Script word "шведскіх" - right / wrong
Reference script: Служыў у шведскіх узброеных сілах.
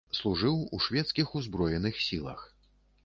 right